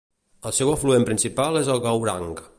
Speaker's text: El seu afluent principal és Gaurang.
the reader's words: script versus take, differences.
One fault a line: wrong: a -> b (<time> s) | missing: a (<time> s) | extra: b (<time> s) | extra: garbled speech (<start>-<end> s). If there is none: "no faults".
extra: el (1.8 s)